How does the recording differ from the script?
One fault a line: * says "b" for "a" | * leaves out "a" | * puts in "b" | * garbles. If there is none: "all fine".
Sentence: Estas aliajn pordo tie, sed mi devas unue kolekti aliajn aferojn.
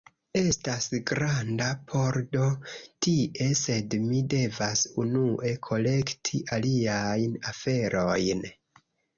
* says "granda" for "aliajn"